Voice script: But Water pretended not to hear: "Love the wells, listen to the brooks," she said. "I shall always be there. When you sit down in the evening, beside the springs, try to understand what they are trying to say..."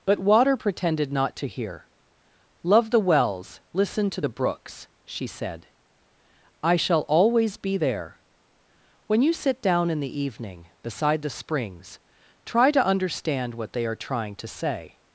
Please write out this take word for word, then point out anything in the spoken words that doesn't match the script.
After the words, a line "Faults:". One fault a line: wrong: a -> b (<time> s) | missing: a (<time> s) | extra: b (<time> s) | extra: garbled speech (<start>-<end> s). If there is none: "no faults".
But Water pretended not to hear: "Love the wells, listen to the brooks," she said. "I shall always be there. When you sit down in the evening, beside the springs, try to understand what they are trying to say..."
Faults:
no faults